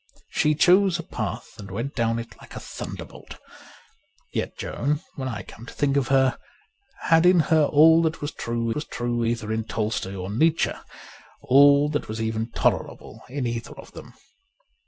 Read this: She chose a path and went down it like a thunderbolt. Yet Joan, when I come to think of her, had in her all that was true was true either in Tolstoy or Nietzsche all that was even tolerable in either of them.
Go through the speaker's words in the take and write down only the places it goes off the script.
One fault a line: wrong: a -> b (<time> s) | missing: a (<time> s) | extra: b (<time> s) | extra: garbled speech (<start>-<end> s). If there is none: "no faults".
no faults